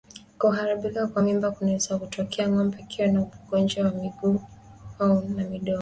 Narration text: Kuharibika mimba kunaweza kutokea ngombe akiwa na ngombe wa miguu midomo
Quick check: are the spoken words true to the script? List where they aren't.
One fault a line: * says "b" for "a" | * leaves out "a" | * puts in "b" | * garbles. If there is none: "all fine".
* puts in "kwa"
* says "ugonjwa" for "ngombe"
* puts in "na"